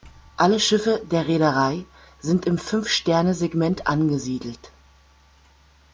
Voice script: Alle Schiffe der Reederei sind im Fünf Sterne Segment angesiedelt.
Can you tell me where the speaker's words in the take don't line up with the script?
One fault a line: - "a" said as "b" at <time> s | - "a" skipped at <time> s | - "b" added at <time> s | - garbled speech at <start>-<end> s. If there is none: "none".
none